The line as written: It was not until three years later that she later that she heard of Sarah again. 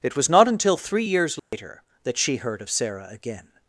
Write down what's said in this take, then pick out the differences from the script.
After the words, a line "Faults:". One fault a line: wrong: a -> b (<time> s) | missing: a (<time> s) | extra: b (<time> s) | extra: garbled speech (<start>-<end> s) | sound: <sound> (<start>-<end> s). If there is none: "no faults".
It was not until three years later that she heard of Sarah again.
Faults:
sound: dropout (1.4-1.5 s)
missing: later that she (2.4 s)